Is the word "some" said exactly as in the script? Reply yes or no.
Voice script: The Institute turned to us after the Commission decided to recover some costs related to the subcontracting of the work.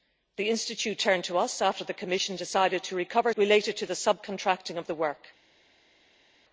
no